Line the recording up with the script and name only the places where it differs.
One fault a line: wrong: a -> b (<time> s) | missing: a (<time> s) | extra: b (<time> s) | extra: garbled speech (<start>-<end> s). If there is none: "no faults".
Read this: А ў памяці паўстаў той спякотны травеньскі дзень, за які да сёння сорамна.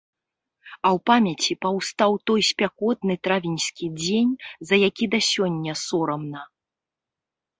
no faults